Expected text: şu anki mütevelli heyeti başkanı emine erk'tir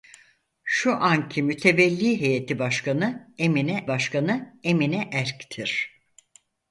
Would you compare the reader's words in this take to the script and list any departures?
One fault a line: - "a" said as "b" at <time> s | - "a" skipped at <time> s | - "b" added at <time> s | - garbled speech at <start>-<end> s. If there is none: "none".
- "başkanı emine" added at 3.9 s